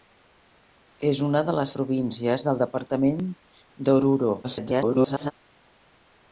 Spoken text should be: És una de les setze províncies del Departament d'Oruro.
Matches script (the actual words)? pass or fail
fail